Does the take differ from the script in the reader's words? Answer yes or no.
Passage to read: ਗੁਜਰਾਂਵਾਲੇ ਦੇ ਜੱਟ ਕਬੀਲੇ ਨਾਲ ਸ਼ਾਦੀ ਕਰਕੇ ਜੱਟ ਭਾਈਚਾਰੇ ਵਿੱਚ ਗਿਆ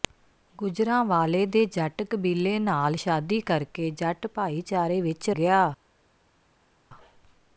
no